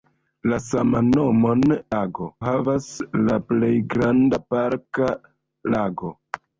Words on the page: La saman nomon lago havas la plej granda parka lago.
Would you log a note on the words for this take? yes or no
no